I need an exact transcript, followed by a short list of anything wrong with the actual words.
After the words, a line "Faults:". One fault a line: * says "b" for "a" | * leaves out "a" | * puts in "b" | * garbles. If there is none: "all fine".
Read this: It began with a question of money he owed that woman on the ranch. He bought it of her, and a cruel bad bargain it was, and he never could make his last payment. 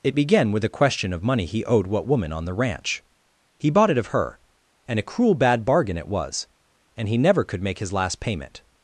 It began with a question of money he owed what woman on the ranch. He bought it of her, and a cruel bad bargain it was, and he never could make his last payment.
Faults:
* says "what" for "that"